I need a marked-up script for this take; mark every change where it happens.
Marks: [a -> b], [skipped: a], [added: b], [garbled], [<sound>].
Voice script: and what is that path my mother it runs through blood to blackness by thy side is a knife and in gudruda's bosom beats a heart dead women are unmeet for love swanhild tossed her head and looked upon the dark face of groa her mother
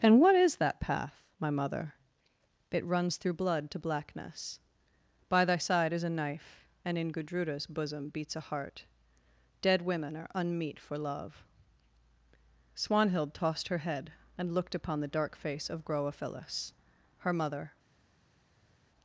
and what is that path my mother it runs through blood to blackness by thy side is a knife and in gudruda's bosom beats a heart dead women are unmeet for love swanhild tossed her head and looked upon the dark face of groa [added: phyllis] her mother